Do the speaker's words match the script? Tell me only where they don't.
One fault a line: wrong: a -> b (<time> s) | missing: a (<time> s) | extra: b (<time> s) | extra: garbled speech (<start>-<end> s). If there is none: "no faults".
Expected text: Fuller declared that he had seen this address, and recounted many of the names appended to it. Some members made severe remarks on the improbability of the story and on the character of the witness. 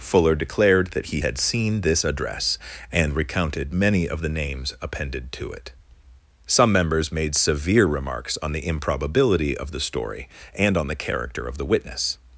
no faults